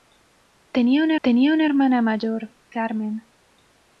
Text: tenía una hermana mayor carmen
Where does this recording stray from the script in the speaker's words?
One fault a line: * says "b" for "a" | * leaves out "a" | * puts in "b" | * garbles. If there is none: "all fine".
* puts in "tenía una"